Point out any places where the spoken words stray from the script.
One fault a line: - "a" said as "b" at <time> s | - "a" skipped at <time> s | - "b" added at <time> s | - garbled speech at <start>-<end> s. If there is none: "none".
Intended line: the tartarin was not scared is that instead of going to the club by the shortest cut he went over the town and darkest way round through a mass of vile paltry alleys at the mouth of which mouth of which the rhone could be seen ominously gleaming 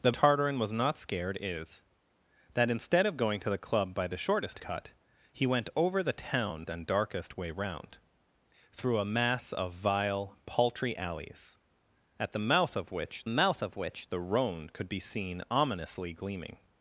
none